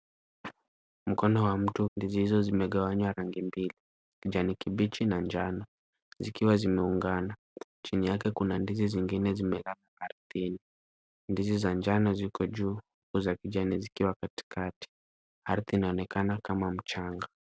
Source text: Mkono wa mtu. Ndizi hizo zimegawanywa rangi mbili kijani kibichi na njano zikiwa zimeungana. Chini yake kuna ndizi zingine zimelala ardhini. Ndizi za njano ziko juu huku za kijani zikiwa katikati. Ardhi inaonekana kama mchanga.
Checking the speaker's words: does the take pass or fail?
pass